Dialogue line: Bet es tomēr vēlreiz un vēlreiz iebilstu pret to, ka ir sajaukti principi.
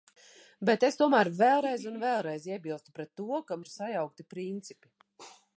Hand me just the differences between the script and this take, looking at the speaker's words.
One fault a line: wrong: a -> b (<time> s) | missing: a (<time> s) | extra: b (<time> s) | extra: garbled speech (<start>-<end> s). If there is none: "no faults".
no faults